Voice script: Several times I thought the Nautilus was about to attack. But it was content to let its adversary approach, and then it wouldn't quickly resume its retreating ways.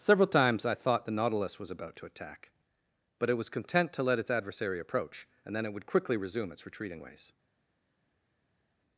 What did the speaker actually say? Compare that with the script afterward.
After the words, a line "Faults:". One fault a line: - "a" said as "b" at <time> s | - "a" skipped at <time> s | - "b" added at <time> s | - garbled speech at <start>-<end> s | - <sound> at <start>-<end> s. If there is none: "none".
Several times I thought the Nautilus was about to attack. But it was content to let its adversary approach, and then it would quickly resume its retreating ways.
Faults:
- "wouldn't" said as "would" at 5.7 s